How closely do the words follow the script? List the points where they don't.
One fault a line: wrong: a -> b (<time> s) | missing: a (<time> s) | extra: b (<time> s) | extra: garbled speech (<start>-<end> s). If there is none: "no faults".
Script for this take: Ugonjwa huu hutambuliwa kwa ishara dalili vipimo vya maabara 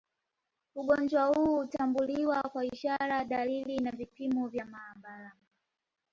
extra: na (3.8 s)